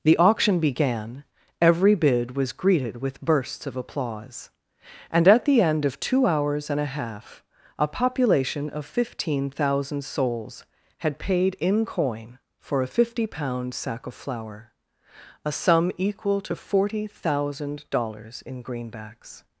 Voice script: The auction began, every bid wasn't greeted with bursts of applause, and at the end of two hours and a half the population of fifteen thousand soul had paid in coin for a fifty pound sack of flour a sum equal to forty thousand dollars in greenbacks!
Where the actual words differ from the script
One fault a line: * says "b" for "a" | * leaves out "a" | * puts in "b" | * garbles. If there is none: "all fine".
* says "was" for "wasn't"
* says "a" for "the"
* says "souls" for "soul"